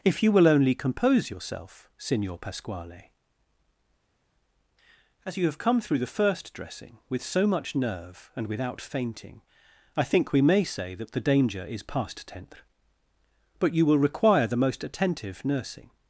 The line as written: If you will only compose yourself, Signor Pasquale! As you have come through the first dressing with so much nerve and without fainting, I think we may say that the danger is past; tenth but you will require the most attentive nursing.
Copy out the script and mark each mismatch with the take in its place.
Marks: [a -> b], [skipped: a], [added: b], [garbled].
If you will only compose yourself, Signor Pasquale! As you have come through the first dressing with so much nerve and without fainting, I think we may say that the danger is past; tenth but you will require the most attentive nursing.